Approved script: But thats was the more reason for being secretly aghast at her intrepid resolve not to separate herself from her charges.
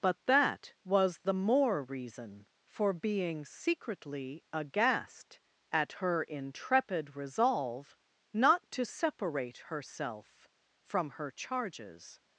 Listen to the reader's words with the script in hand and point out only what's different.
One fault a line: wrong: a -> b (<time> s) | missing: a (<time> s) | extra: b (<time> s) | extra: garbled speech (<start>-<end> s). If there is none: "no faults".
wrong: thats -> that (0.2 s)